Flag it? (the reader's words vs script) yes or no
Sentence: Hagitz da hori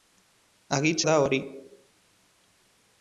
no